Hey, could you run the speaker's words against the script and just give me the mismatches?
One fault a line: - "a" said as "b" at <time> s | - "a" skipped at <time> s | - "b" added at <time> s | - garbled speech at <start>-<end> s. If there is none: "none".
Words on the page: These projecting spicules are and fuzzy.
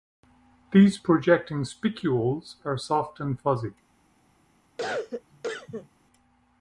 - "soft" added at 2.8 s